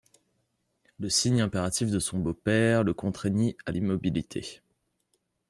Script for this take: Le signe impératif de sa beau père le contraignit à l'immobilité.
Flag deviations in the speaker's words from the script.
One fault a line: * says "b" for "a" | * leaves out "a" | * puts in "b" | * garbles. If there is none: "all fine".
* says "son" for "sa"